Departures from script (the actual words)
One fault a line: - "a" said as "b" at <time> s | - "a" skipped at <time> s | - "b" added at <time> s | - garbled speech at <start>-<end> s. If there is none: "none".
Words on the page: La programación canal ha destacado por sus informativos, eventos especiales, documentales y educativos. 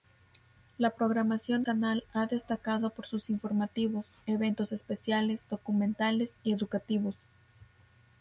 none